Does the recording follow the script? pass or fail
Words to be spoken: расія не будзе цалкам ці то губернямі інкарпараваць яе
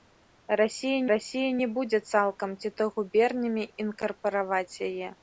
fail